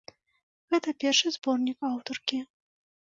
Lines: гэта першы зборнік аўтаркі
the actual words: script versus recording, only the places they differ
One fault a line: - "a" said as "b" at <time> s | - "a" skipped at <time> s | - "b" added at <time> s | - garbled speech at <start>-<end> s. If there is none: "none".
none